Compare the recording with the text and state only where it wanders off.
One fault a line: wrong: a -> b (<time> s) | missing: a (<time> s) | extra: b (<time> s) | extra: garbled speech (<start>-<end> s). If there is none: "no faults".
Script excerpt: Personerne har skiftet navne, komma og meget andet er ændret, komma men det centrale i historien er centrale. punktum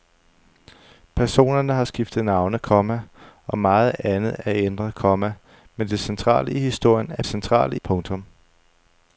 no faults